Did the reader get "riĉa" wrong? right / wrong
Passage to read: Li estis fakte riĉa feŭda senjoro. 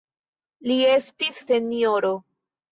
wrong